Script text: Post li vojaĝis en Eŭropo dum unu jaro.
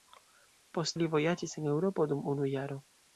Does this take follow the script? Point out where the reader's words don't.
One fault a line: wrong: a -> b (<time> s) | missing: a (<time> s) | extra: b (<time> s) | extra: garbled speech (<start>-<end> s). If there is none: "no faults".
no faults